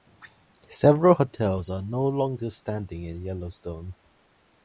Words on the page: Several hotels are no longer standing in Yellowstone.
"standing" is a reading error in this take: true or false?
false